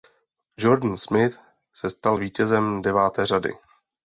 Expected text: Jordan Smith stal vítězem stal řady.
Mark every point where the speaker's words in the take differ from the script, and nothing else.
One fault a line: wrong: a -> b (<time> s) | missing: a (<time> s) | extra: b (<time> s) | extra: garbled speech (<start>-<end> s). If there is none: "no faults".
extra: se (1.7 s)
wrong: stal -> deváté (2.8 s)